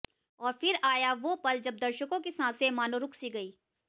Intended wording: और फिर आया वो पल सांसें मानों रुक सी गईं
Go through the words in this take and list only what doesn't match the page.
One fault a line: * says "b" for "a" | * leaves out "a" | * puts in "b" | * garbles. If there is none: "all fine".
* puts in "जब दर्शकों की"